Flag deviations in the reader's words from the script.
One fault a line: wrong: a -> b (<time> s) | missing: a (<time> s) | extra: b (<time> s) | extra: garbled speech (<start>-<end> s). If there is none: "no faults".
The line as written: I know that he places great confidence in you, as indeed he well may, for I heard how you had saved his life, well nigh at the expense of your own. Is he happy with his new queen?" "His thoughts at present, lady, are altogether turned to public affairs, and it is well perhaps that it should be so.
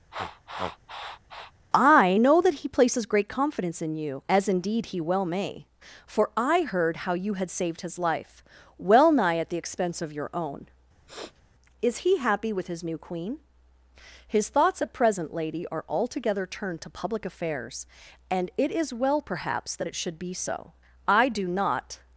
extra: I do not (21.1 s)